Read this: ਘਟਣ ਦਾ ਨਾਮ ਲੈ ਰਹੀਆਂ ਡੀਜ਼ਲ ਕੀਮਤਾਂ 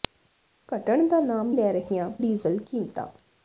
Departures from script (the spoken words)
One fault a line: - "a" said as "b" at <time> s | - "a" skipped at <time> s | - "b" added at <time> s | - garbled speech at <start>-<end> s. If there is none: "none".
none